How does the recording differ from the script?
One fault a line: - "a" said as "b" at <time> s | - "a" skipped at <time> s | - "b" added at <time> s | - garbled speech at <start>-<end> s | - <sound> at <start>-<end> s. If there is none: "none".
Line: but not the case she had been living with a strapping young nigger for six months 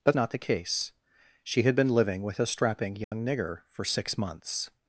- dropout at 3.0-3.1 s